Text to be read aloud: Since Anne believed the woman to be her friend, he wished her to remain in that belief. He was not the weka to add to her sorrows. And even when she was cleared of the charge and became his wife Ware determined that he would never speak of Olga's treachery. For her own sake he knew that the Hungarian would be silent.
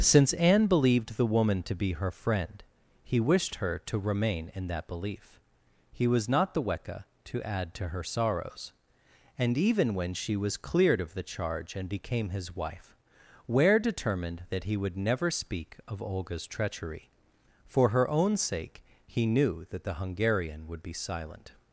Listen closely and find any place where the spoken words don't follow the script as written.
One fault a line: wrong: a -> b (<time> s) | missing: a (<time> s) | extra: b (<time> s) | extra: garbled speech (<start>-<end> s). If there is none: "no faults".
no faults